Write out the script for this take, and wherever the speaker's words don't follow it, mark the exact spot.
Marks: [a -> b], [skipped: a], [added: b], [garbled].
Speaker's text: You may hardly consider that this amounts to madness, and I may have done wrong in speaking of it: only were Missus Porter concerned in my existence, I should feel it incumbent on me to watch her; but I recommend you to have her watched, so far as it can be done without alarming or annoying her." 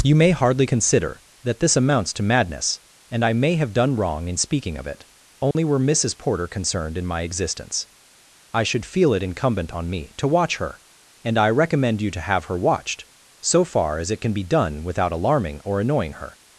You may hardly consider that this amounts to madness, and I may have done wrong in speaking of it: only were Missus Porter concerned in my existence, I should feel it incumbent on me to watch her; [but -> and] I recommend you to have her watched, so far as it can be done without alarming or annoying her."